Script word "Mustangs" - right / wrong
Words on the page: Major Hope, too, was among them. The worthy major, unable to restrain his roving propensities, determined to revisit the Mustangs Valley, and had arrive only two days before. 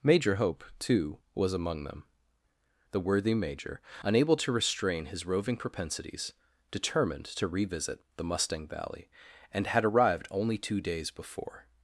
wrong